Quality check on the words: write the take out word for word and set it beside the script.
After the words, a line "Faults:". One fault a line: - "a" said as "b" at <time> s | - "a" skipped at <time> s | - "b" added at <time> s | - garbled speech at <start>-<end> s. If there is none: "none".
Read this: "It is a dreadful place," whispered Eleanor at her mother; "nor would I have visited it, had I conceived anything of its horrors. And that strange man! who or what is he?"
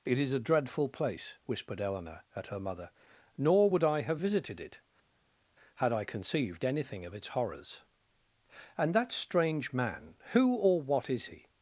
"It is a dreadful place," whispered Eleanor at her mother; "nor would I have visited it, had I conceived anything of its horrors. And that strange man! who or what is he?"
Faults:
none